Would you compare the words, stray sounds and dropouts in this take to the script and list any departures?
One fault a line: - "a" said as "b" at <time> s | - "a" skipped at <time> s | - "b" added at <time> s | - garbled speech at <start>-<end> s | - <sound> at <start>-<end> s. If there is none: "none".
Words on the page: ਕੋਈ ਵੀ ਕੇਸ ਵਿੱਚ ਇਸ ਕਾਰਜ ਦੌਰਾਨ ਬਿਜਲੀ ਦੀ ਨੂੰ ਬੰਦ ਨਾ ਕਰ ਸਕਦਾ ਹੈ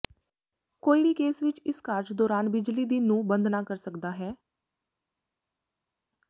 none